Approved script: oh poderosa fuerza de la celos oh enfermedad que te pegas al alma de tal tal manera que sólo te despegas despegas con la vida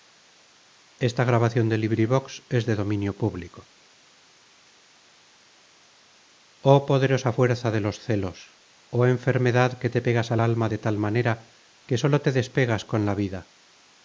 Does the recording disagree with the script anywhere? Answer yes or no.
yes